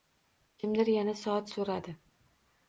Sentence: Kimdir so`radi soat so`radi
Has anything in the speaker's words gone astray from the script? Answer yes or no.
yes